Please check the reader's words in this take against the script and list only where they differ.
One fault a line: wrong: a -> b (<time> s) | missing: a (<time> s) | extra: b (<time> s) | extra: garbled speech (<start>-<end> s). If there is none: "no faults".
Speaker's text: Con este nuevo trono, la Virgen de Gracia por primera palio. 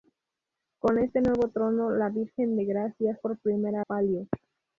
no faults